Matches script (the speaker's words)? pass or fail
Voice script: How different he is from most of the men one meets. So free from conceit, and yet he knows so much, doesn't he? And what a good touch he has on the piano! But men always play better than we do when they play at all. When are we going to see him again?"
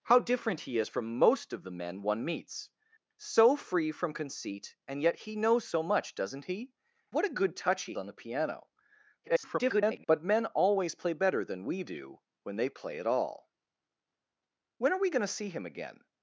fail